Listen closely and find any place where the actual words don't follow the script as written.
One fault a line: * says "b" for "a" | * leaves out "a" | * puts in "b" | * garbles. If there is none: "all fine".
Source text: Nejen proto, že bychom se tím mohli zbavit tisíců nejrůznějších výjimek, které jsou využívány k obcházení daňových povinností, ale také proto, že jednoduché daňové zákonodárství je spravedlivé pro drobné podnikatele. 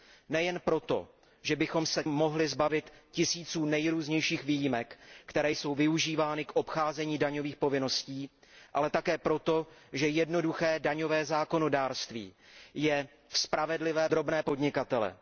* leaves out "tím"
* leaves out "pro"